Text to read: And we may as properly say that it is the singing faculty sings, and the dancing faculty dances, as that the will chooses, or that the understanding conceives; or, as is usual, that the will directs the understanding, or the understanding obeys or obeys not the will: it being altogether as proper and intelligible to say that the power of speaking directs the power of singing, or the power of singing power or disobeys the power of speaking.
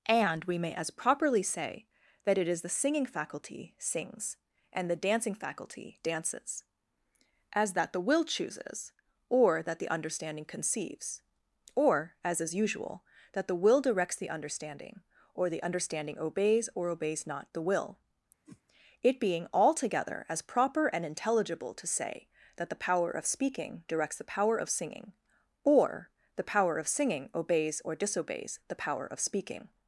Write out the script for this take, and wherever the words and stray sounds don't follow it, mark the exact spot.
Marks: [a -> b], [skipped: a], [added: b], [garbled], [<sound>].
And we may as properly say that it is the singing faculty sings, and the dancing faculty dances, as that the will chooses, or that the understanding conceives; or, as is usual, that the will directs the understanding, or the understanding obeys or obeys not the will: [whoosh] it being altogether as proper and intelligible to say that the power of speaking directs the power of singing, or the power of singing [power -> obeys] or disobeys the power of speaking.